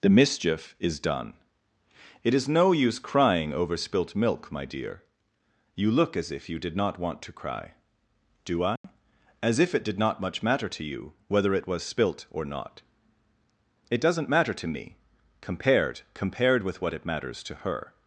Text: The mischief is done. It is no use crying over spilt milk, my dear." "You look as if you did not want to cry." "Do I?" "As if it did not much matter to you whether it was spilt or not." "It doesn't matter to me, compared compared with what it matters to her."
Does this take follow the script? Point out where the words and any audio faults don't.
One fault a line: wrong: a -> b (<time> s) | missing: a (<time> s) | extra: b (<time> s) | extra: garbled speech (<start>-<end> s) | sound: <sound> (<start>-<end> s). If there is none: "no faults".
sound: dropout (8.8-8.8 s)